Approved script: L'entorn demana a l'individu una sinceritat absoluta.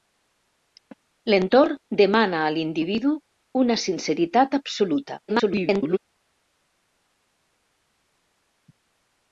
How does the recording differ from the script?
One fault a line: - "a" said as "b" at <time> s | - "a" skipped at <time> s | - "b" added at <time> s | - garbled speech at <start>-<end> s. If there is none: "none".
- garbled speech at 5.3-6.0 s